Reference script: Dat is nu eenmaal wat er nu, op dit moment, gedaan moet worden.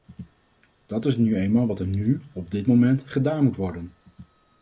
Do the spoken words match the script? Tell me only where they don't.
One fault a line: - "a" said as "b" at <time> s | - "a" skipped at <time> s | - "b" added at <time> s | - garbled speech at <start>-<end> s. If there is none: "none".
none